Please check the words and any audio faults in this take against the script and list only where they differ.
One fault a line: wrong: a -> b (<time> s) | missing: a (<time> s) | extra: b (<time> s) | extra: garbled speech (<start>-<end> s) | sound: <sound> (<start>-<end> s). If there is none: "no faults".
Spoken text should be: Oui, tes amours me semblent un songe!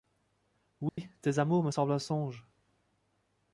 sound: dropout (0.9-1.0 s)